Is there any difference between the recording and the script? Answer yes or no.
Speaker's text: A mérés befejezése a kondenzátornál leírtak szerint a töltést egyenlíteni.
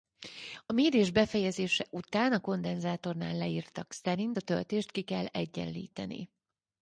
yes